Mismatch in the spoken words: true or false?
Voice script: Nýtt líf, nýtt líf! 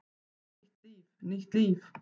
false